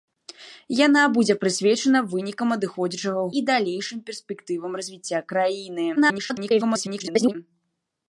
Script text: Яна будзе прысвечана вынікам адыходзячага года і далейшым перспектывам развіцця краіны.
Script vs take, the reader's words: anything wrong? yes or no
yes